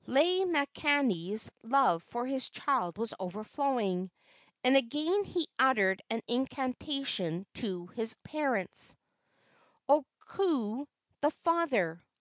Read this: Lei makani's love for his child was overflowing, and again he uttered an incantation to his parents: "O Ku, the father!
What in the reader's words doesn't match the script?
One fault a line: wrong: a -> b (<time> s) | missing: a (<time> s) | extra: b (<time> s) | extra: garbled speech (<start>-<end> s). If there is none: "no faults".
no faults